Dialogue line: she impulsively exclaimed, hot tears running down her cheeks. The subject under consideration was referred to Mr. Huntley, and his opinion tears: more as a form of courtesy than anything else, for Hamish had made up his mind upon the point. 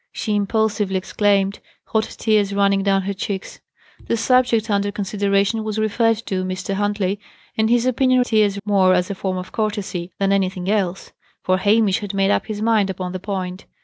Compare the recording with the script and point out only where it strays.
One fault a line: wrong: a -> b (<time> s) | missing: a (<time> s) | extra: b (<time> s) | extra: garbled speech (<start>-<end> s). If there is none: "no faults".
no faults